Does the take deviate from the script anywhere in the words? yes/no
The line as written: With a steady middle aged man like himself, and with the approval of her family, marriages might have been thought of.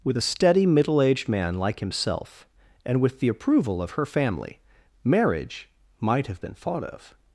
yes